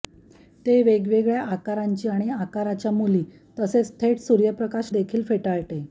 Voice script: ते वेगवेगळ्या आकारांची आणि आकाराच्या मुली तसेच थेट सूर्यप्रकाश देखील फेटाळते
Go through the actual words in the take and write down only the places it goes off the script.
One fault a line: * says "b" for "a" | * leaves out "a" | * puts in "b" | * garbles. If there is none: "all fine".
all fine